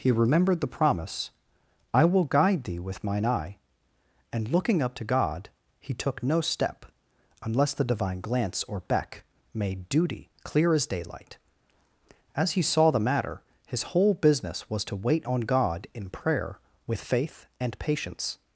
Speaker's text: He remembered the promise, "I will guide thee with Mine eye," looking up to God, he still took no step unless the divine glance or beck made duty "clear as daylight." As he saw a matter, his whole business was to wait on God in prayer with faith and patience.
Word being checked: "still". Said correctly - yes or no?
no